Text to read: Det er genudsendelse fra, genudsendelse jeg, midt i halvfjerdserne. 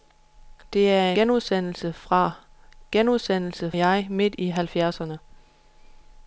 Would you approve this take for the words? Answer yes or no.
yes